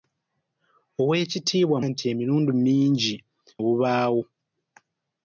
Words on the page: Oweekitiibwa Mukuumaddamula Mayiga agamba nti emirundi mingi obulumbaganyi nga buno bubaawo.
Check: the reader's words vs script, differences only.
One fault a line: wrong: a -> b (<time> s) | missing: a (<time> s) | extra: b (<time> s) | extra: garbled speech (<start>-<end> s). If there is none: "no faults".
missing: Mukuumaddamula Mayiga agamba (1.8 s)
missing: obulumbaganyi nga buno (3.1 s)